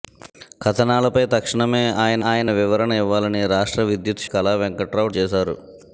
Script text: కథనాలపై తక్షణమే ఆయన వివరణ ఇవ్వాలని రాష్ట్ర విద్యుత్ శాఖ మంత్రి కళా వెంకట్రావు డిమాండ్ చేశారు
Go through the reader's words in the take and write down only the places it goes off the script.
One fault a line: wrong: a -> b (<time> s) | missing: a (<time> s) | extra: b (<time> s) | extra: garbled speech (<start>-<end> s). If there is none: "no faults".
extra: ఆయన (2.2 s)
missing: శాఖ మంత్రి (4.2 s)
missing: డిమాండ్ (5.1 s)